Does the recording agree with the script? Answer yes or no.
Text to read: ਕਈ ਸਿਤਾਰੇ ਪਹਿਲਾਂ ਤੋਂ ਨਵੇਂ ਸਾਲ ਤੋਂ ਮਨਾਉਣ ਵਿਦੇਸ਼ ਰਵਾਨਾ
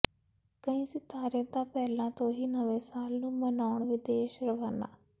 no